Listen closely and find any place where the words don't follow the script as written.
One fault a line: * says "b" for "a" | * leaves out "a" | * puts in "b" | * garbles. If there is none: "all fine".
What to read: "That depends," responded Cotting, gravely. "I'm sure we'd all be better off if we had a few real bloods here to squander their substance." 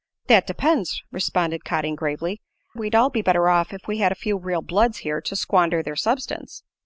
* leaves out "I'm sure"